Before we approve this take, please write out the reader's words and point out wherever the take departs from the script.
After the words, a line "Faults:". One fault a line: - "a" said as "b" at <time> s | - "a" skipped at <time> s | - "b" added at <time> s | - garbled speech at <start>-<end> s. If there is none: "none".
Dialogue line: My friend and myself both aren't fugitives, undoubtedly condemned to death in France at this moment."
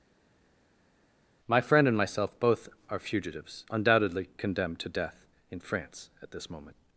My friend and myself both are fugitives, undoubtedly condemned to death in France at this moment."
Faults:
- "aren't" said as "are" at 2.9 s